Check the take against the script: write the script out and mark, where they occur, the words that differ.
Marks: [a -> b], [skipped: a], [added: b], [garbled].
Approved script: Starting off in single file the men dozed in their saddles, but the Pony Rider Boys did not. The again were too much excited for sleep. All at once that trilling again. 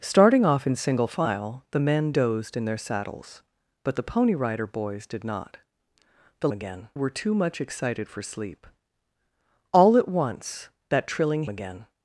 Starting off in single file the men dozed in their saddles, but the Pony Rider Boys did not. The again were too much excited for sleep. All at once that trilling again.